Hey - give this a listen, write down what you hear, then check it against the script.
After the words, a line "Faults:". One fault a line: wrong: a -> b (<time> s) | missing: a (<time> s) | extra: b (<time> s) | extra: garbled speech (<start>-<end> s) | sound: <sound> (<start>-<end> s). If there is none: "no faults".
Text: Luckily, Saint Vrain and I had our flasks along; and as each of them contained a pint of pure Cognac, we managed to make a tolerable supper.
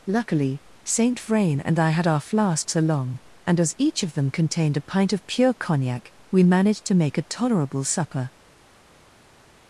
Luckily, Saint Vrain and I had our flasks along; and as each of them contained a pint of pure Cognac, we managed to make a tolerable supper.
Faults:
no faults